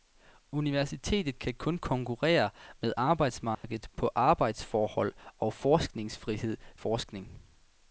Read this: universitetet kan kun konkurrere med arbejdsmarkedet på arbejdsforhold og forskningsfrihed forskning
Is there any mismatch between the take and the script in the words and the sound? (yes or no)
yes